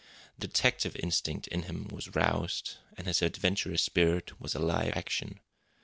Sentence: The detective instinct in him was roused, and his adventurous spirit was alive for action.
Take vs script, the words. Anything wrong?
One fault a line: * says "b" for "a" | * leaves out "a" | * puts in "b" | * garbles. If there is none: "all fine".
* leaves out "for"